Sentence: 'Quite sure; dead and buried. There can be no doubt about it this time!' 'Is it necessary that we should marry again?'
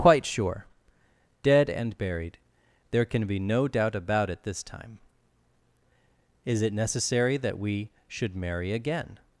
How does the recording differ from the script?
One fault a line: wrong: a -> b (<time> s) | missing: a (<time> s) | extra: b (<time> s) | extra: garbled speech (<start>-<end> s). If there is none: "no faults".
no faults